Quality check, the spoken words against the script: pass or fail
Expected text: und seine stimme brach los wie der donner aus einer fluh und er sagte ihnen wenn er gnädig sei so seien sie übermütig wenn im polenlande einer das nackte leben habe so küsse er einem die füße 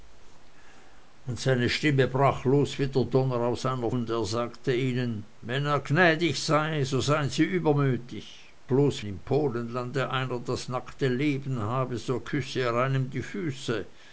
fail